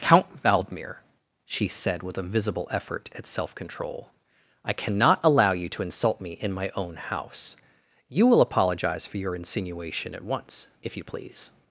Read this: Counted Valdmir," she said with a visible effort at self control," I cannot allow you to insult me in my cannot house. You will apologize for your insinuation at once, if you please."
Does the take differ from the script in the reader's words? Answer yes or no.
yes